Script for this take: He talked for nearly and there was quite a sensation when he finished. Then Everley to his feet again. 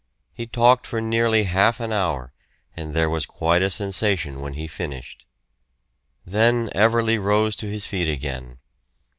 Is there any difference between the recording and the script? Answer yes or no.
yes